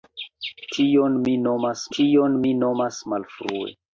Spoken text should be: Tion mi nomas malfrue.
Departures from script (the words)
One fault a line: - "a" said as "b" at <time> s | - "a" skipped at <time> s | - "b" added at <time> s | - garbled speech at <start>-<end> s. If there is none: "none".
- "tion mi nomas" added at 2.0 s